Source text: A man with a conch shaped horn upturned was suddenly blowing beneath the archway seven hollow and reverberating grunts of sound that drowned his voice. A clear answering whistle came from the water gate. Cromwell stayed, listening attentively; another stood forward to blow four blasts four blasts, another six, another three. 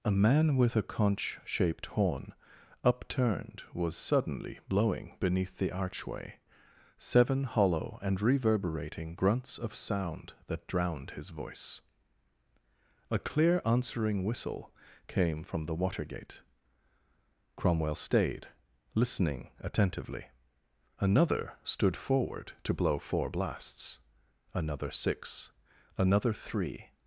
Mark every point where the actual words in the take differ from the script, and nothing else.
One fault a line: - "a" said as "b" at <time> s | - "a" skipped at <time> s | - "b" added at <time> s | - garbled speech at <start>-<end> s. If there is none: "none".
- "four blasts" skipped at 24.0 s